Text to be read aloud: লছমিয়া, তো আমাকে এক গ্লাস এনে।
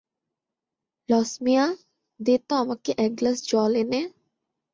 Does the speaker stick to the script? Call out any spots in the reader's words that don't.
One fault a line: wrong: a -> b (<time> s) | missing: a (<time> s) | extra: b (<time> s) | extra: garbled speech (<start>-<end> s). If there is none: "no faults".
extra: দে (2.2 s)
extra: জল (3.5 s)